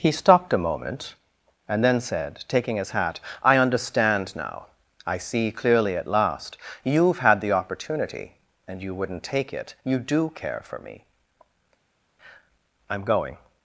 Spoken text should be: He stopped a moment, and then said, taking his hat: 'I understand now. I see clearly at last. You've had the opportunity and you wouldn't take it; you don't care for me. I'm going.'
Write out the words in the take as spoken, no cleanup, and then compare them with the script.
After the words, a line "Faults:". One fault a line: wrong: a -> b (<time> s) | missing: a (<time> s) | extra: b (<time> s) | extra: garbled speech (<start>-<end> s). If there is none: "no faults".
He stopped a moment, and then said, taking his hat: 'I understand now. I see clearly at last. You've had the opportunity and you wouldn't take it; you do care for me. I'm going.'
Faults:
wrong: don't -> do (10.0 s)